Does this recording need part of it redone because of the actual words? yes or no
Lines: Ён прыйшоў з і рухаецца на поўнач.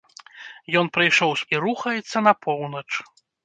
no